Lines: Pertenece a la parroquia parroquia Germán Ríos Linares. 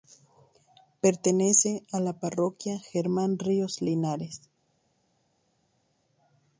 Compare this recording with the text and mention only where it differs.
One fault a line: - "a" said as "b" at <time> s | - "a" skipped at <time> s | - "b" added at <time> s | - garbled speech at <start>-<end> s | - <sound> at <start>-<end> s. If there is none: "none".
- "parroquia" skipped at 2.8 s